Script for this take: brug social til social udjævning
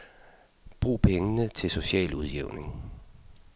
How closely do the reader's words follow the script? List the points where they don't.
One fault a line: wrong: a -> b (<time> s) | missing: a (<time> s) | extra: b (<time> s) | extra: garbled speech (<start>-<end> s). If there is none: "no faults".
wrong: social -> pengene (1.0 s)